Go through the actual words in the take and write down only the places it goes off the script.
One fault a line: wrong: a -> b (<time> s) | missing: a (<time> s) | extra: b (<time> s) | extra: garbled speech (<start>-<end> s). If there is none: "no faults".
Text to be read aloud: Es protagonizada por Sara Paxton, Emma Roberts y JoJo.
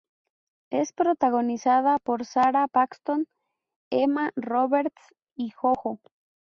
no faults